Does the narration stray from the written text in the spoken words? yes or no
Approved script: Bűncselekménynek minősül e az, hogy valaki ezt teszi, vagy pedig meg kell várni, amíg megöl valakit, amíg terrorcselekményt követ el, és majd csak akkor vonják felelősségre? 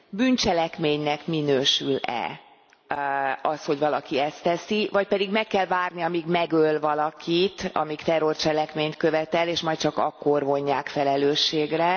no